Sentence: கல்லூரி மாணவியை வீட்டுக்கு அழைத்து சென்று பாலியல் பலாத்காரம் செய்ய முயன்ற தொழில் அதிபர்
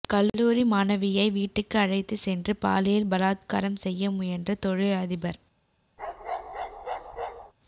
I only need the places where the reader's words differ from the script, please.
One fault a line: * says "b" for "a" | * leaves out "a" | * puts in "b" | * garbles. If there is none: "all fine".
all fine